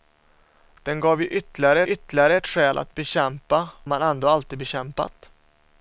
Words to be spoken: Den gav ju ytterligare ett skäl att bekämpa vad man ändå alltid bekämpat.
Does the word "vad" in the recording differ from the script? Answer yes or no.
yes